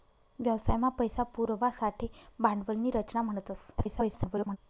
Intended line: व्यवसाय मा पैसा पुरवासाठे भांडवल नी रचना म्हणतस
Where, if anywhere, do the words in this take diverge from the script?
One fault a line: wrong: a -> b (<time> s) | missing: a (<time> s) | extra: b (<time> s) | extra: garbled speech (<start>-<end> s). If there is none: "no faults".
extra: garbled speech (3.8-4.6 s)